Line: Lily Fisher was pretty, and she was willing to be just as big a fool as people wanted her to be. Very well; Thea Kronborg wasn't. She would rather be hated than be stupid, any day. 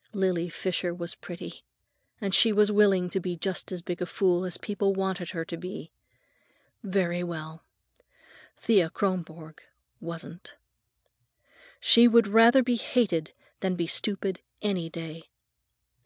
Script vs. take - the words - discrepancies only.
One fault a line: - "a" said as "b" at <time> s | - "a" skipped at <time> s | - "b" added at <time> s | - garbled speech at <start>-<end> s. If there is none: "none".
none